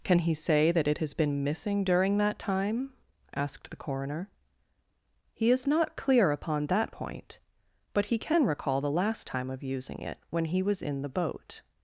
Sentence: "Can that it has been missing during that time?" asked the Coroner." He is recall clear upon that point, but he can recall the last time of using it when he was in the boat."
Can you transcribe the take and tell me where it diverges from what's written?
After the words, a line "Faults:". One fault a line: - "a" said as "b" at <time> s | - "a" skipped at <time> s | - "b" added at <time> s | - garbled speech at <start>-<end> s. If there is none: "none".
"Can he say that it has been missing during that time?" asked the Coroner." He is not clear upon that point, but he can recall the last time of using it when he was in the boat."
Faults:
- "he say" added at 0.2 s
- "recall" said as "not" at 5.7 s